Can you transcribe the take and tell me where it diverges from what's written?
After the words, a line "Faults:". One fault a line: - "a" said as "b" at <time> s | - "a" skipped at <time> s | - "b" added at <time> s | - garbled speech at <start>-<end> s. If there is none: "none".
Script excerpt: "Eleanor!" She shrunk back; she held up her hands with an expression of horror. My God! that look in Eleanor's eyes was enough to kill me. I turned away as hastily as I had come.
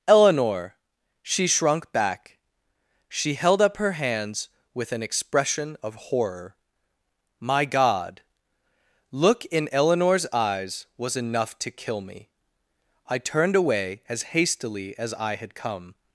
"Eleanor!" She shrunk back; she held up her hands with an expression of horror. My God! look in Eleanor's eyes was enough to kill me. I turned away as hastily as I had come.
Faults:
- "that" skipped at 8.2 s